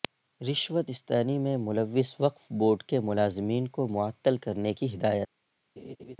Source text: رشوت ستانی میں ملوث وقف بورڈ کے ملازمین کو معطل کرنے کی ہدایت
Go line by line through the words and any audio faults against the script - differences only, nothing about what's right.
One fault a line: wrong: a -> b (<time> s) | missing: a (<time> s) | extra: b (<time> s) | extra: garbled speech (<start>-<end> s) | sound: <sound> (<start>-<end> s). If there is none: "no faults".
sound: laugh (5.8-6.2 s)